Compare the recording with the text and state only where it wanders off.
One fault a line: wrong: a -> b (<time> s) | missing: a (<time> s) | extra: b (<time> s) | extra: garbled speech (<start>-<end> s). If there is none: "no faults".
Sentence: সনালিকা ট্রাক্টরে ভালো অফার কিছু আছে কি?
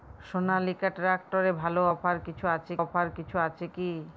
extra: অফার কিছু আছে (2.8 s)